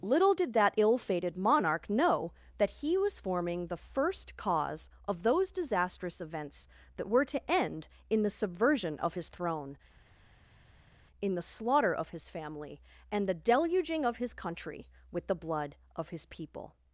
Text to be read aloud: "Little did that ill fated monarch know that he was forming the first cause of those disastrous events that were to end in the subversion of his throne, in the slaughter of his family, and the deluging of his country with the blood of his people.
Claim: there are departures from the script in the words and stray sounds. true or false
false